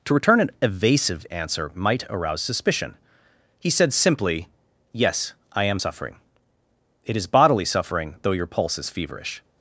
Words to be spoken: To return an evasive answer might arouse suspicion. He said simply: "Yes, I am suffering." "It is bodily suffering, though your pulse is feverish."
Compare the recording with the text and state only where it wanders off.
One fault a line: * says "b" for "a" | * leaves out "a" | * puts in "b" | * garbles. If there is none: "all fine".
all fine